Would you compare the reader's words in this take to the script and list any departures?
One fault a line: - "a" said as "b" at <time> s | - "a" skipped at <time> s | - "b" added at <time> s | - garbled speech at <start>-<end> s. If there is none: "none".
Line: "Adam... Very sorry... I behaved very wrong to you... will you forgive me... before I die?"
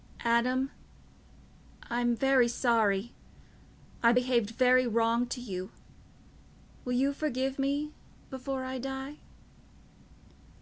- "I'm" added at 1.9 s